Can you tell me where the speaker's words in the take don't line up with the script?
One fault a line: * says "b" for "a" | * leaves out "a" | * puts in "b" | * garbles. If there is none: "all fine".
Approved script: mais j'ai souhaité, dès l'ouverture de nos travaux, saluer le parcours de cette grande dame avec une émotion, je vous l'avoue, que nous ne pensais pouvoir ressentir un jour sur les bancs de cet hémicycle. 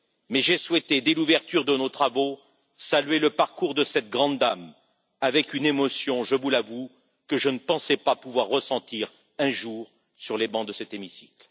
* says "je" for "nous"
* puts in "pas"